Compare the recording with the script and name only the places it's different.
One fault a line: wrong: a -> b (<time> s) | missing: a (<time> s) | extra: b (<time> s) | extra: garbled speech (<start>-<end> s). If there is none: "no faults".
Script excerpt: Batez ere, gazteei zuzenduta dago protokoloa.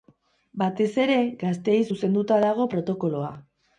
no faults